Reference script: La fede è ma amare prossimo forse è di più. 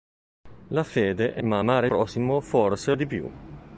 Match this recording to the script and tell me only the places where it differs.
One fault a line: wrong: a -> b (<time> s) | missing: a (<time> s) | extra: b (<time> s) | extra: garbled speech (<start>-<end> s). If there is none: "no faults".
no faults